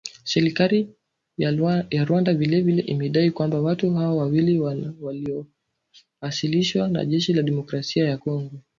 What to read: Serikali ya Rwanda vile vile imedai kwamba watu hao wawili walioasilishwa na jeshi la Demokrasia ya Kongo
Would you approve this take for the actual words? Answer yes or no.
yes